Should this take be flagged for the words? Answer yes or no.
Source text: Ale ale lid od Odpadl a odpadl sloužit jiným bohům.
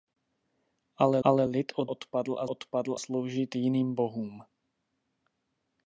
no